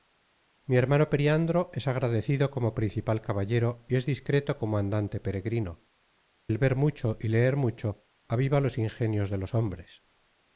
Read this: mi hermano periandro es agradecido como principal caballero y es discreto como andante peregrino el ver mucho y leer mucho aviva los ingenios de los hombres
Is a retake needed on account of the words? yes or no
no